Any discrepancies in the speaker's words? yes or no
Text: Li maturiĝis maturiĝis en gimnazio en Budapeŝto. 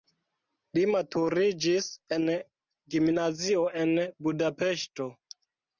yes